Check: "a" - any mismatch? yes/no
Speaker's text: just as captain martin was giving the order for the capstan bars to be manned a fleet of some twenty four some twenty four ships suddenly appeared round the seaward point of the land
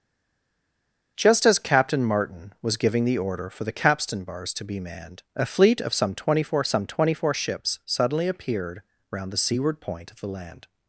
no